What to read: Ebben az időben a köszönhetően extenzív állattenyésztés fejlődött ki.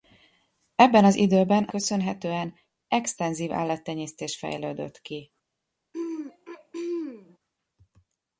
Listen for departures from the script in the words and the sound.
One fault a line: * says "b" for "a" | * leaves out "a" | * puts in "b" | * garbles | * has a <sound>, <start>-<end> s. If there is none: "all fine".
* has a throat clearing, 5.9-7.4 s